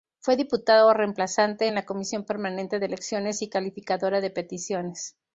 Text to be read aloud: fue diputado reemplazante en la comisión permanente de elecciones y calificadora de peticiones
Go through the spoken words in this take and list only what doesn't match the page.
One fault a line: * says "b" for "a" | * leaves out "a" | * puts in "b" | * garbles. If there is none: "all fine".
all fine